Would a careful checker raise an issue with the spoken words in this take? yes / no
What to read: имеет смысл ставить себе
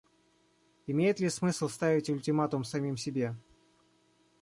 yes